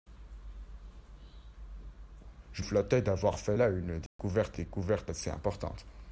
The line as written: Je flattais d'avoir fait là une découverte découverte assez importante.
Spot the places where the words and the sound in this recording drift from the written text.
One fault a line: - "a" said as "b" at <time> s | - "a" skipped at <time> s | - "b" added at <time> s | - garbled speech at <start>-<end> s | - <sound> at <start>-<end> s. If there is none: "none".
- dropout at 4.1-4.2 s